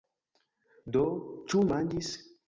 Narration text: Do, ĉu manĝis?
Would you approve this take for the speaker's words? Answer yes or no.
yes